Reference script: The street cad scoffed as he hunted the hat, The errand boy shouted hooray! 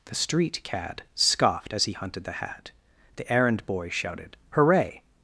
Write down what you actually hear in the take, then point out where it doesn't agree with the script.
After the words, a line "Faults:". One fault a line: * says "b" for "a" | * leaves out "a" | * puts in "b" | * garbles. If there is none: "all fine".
The street cad scoffed as he hunted the hat, The errand boy shouted hooray!
Faults:
all fine